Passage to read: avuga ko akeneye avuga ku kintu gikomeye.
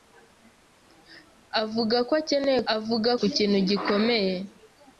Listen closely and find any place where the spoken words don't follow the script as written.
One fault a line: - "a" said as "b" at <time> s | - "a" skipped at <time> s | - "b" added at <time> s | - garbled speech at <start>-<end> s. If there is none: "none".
none